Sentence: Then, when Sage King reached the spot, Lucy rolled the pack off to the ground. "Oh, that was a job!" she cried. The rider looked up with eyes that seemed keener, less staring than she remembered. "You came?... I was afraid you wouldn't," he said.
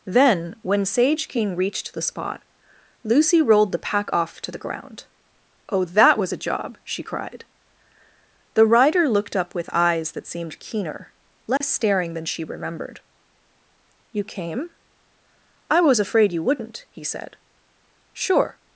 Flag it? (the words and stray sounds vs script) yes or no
yes